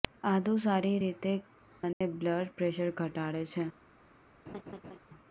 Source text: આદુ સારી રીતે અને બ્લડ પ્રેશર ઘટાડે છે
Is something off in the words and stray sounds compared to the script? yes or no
yes